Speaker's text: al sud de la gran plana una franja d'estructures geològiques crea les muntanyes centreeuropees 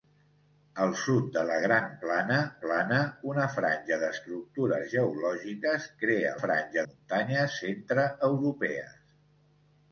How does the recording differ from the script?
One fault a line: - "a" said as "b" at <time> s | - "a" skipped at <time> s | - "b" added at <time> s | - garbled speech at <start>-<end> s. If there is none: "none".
- "plana" added at 2.6 s
- "les" said as "franja" at 6.4 s